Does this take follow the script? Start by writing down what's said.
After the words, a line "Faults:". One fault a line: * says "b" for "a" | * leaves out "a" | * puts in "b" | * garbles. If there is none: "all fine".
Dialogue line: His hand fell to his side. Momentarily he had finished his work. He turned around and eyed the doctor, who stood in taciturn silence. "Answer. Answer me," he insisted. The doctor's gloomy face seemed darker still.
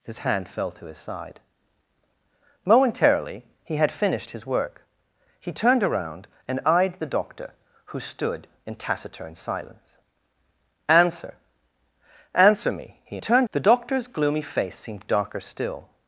His hand fell to his side. Momentarily he had finished his work. He turned around and eyed the doctor, who stood in taciturn silence. "Answer. Answer me," he turned. The doctor's gloomy face seemed darker still.
Faults:
* says "turned" for "insisted"